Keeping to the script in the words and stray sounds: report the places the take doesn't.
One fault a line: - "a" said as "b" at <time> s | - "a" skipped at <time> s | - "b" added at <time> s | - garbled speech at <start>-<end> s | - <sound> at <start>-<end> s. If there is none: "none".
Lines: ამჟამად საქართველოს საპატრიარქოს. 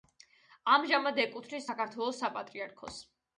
- "ეკუთვნის" added at 1.2 s